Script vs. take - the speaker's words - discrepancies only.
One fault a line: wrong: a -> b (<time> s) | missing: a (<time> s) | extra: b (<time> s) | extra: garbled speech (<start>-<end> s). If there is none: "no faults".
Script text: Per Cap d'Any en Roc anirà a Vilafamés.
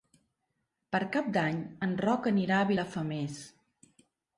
no faults